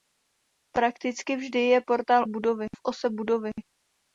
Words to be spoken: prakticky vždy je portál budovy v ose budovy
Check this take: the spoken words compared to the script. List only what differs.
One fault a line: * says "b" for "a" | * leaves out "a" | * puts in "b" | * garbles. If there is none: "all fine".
all fine